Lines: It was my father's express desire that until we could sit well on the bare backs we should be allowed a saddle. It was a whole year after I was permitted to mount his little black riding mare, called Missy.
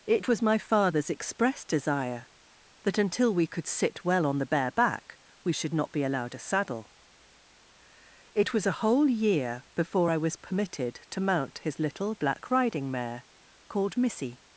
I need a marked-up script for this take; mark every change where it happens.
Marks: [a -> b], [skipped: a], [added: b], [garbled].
It was my father's express desire that until we could sit well on the bare [backs -> back] we should [added: not] be allowed a saddle. It was a whole year [after -> before] I was permitted to mount his little black riding mare, called Missy.